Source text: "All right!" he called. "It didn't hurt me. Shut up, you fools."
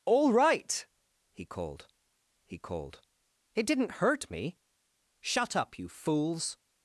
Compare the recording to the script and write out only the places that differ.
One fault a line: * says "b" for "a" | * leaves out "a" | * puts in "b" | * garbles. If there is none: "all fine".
* puts in "he called"